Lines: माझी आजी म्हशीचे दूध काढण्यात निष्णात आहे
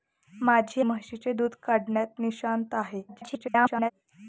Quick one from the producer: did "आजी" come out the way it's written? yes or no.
no